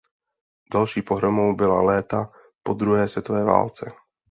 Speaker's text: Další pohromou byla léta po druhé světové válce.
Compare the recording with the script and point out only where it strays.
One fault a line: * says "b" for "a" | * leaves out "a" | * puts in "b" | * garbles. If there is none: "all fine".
all fine